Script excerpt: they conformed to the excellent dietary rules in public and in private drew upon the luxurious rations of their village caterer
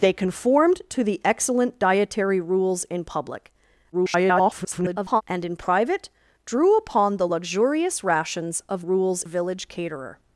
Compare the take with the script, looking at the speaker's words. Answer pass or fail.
fail